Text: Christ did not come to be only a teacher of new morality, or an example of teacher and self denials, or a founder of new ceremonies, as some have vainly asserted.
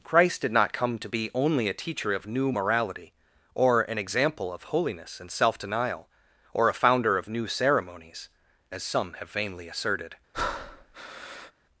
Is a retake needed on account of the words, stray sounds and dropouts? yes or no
yes